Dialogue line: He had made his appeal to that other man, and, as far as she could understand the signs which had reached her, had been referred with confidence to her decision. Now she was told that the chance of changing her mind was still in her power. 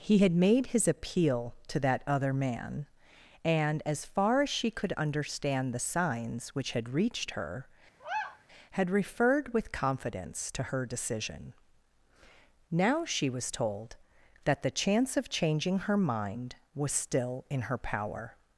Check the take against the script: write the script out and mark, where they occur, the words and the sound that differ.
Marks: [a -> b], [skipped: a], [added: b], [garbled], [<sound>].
He had made his appeal to that other man, and, as far as she could understand the signs which had reached her, [sigh] had [skipped: been] referred with confidence to her decision. Now she was told that the chance of changing her mind was still in her power.